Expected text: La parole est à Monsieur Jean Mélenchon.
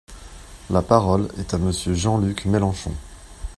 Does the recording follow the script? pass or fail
fail